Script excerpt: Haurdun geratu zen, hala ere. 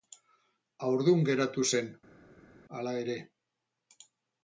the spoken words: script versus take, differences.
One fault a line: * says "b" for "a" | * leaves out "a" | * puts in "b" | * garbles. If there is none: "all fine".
all fine